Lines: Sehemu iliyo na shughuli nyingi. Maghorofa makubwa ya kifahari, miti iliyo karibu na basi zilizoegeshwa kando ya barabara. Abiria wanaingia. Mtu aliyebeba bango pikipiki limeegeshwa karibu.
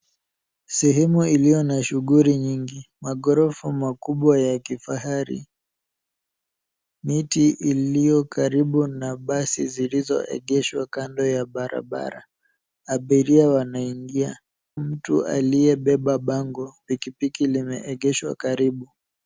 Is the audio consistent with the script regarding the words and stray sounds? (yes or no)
yes